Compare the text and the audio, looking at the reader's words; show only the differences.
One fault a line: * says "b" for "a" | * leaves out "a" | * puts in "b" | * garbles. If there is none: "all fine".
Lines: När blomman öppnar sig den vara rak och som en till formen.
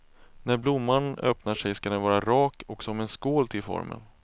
* puts in "ska"
* puts in "skål"